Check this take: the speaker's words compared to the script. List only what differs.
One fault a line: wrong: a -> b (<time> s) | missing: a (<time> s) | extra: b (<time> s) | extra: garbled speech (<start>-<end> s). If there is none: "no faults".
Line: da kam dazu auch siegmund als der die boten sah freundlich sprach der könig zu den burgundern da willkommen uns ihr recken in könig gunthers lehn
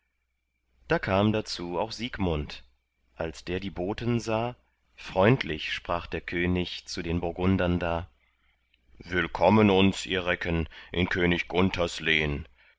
no faults